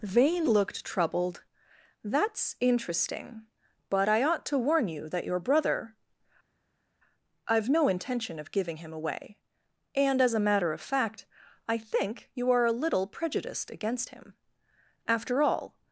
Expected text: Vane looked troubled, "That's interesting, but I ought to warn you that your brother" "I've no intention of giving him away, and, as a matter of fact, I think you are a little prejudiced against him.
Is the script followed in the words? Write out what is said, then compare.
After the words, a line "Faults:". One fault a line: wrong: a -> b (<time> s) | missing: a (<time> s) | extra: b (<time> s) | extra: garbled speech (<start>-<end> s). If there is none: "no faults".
Vane looked troubled, "That's interesting, but I ought to warn you that your brother" "I've no intention of giving him away, and, as a matter of fact, I think you are a little prejudiced against him. After all
Faults:
extra: After all (15.1 s)